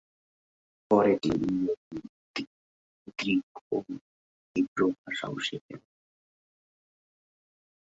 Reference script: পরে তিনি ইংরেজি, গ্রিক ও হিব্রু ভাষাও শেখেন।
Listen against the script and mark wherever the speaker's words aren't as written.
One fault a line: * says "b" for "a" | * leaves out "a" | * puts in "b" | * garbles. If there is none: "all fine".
all fine